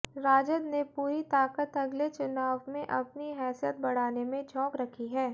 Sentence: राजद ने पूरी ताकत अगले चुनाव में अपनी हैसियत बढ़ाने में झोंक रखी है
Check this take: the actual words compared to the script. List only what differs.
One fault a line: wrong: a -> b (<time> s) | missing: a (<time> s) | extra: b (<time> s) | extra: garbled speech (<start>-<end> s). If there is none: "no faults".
no faults